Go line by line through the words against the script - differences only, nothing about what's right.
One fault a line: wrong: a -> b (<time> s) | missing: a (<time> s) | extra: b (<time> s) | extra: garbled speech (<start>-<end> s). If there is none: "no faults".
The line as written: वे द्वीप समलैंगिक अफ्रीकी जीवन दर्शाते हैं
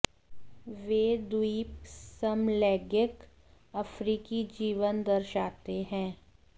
no faults